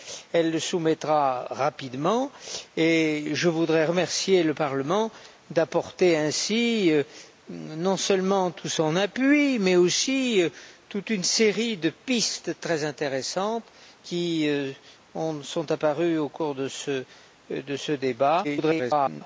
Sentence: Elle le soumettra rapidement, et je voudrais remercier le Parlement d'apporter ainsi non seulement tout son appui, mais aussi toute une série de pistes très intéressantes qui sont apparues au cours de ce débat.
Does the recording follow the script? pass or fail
fail